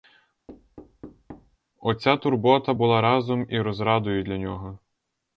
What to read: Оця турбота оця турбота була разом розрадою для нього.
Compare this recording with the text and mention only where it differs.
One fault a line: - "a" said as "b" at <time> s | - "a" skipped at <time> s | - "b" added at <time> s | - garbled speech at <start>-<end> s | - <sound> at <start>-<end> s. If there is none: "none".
- thud at 0.5-1.6 s
- "оця турбота" skipped at 2.7 s
- "і" added at 3.5 s